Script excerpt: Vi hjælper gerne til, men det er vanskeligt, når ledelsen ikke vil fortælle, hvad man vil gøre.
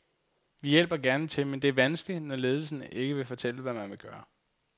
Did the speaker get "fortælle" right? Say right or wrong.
right